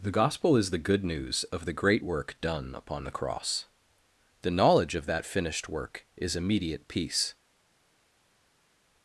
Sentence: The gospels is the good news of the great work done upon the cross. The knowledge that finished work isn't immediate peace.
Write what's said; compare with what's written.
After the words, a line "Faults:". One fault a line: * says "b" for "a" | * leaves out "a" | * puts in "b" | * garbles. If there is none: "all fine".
The gospel is the good news of the great work done upon the cross. The knowledge of that finished work is immediate peace.
Faults:
* says "gospel" for "gospels"
* puts in "of"
* says "is" for "isn't"